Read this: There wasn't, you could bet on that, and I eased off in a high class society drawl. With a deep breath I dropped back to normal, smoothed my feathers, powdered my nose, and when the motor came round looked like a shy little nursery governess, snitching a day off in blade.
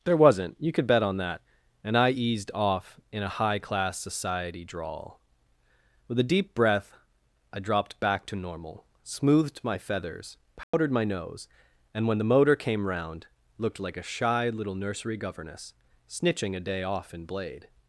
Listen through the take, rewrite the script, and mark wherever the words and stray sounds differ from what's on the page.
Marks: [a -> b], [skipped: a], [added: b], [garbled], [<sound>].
There wasn't, you could bet on that, and I eased off in a high class society drawl. With a deep breath I dropped back to normal, smoothed my feathers, powdered [dropout] my nose, and when the motor came round looked like a shy little nursery governess, snitching a day off in blade.